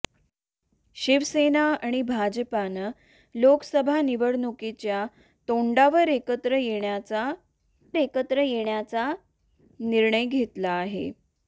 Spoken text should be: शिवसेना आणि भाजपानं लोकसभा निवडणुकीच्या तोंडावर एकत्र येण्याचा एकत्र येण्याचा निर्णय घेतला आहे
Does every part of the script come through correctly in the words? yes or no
yes